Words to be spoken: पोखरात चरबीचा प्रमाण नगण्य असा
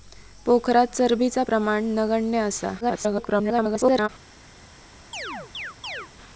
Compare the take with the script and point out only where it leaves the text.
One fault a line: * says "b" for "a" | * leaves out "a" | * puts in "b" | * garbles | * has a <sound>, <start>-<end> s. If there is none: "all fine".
* garbles
* has a chirp, 5.1-6.1 s